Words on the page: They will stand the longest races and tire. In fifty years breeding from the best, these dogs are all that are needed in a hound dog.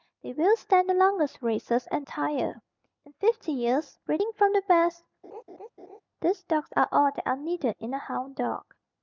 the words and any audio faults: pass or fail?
fail